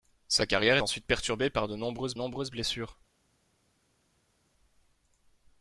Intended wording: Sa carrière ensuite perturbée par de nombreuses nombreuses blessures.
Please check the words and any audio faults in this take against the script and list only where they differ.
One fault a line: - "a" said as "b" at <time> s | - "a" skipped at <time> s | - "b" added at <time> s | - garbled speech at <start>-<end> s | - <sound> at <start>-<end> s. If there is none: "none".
none